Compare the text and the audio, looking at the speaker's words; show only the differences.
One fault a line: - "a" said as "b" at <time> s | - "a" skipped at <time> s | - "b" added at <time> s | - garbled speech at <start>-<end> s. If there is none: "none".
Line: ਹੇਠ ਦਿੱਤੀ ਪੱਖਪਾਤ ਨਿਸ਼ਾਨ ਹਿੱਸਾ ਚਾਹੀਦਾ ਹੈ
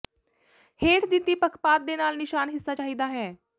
- "ਦੇ ਨਾਲ" added at 1.8 s